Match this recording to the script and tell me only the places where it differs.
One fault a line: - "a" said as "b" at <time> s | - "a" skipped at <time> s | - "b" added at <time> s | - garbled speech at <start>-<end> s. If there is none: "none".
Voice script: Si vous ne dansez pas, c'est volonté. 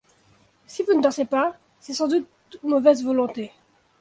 - "sans doute mauvaise" added at 1.9 s